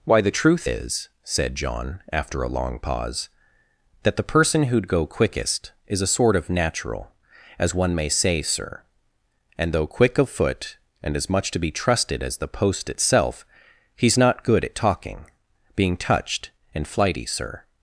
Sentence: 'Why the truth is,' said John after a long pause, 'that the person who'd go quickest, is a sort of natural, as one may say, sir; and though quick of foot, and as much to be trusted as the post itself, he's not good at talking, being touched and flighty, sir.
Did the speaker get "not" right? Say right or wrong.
right